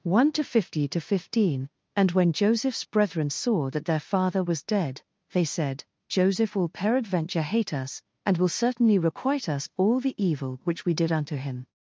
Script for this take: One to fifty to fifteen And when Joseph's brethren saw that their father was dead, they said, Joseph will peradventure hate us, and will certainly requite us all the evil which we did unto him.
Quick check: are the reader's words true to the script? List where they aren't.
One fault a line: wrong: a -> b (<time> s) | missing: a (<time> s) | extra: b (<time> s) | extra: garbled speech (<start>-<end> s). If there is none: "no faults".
no faults